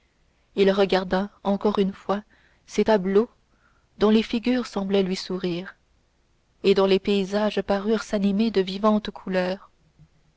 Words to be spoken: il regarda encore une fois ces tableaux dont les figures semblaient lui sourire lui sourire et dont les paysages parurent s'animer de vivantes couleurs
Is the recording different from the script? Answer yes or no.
yes